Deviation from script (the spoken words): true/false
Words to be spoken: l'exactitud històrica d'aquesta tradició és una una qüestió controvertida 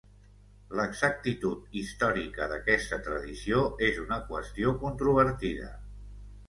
true